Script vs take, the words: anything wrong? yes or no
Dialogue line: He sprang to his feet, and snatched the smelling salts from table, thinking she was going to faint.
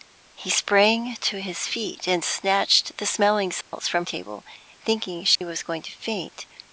no